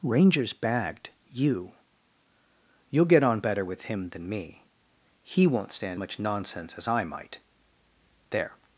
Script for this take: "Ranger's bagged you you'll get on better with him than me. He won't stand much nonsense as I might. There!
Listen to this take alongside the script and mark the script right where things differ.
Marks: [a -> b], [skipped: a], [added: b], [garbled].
"Ranger's bagged you you'll get on better with him than me. He won't stand much nonsense as I might. There!